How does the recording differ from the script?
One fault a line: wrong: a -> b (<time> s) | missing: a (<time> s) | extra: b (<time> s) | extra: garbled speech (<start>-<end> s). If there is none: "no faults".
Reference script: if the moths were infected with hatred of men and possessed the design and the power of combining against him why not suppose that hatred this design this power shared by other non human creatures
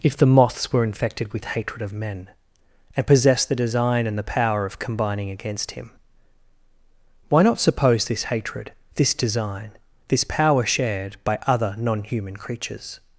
wrong: that -> this (8.1 s)